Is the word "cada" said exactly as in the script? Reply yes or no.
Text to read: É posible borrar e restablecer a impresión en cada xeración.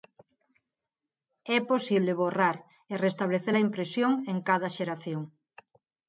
yes